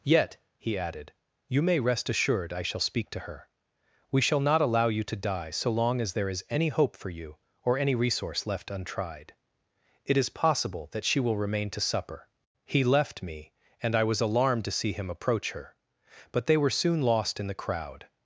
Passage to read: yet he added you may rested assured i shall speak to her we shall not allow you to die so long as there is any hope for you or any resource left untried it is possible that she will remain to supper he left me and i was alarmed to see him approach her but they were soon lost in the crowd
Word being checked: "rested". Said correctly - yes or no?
no